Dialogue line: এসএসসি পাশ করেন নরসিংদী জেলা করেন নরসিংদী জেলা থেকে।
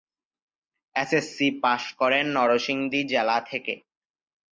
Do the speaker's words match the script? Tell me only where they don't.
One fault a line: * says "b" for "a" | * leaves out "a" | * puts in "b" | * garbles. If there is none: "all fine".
* leaves out "করেন নরসিংদী জেলা"